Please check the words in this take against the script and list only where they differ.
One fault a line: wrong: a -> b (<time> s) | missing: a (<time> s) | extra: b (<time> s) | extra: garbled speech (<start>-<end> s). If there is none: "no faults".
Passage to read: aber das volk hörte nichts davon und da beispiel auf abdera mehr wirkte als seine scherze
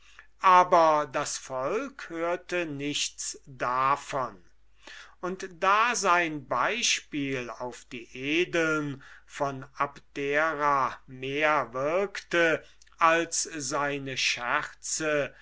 extra: sein (5.9 s)
extra: die edeln von (7.8 s)